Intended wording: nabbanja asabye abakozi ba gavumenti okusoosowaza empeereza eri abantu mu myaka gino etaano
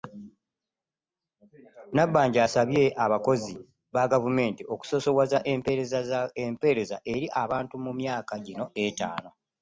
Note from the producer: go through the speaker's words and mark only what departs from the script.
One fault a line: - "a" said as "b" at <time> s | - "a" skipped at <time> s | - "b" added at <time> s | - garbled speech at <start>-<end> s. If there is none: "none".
none